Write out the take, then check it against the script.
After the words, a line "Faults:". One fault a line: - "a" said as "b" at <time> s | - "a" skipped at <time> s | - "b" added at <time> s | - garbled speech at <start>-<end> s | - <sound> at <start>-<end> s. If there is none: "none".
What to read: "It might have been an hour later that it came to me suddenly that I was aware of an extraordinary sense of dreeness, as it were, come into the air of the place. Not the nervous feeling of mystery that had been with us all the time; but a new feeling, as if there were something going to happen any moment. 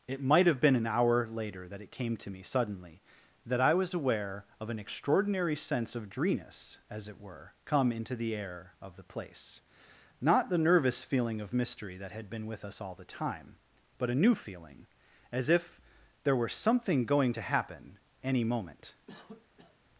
"It might have been an hour later that it came to me suddenly that I was aware of an extraordinary sense of dreeness, as it were, come into the air of the place. Not the nervous feeling of mystery that had been with us all the time; but a new feeling, as if there were something going to happen any moment.
Faults:
- cough at 19.1-19.8 s